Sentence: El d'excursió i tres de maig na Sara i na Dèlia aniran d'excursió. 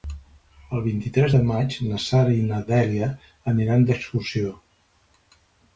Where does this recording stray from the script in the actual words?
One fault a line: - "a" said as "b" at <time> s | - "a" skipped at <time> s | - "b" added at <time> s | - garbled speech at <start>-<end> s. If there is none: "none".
- "d'excursió" said as "vint" at 0.8 s